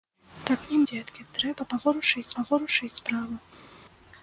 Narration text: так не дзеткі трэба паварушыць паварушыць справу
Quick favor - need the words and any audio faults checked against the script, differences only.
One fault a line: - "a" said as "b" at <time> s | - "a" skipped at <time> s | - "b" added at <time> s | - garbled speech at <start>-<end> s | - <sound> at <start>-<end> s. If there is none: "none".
none